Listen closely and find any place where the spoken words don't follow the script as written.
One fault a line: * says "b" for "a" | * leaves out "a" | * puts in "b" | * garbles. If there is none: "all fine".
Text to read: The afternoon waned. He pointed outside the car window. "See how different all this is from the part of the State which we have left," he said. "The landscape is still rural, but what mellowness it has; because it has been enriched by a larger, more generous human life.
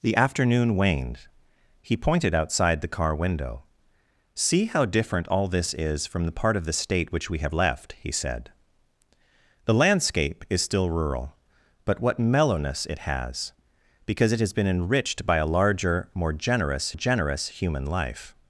* puts in "generous"